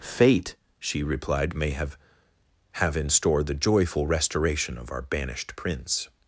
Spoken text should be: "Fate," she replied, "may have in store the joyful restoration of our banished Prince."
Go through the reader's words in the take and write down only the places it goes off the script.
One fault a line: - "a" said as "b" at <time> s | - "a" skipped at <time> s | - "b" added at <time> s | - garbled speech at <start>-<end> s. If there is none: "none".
- "have" added at 2.7 s